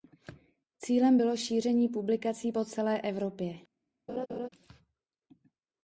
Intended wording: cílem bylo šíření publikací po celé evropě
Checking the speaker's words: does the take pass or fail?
pass